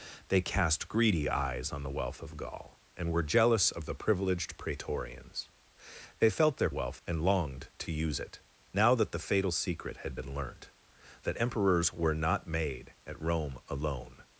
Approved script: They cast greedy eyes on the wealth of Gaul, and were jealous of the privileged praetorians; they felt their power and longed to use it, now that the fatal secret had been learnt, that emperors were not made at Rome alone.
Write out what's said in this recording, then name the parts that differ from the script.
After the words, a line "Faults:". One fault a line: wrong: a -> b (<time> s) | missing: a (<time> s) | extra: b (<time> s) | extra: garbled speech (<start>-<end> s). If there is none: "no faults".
They cast greedy eyes on the wealth of Gaul, and were jealous of the privileged praetorians; they felt their wealth and longed to use it, now that the fatal secret had been learnt, that emperors were not made at Rome alone.
Faults:
wrong: power -> wealth (6.7 s)